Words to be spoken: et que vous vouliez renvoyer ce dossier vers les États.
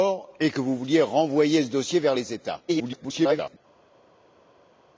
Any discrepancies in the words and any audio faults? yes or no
yes